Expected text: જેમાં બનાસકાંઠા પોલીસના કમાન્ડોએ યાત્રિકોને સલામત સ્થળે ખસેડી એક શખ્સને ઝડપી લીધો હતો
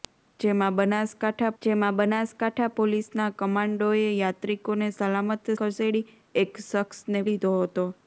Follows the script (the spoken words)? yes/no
no